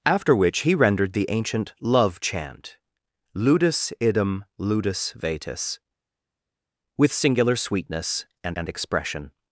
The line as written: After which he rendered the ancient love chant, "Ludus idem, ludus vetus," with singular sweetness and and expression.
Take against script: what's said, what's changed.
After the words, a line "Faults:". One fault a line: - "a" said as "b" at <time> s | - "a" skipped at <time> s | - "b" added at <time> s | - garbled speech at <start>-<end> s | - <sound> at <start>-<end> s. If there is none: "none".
After which he rendered the ancient love chant, "Ludus idem, ludus vetus," with singular sweetness and and expression.
Faults:
none